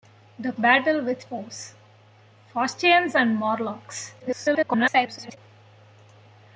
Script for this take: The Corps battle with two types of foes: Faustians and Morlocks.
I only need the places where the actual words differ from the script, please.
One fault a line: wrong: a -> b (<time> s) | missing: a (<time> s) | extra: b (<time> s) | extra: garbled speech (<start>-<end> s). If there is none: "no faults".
missing: Corps (0.5 s)
missing: two types of (1.3 s)
extra: garbled speech (4.2-5.4 s)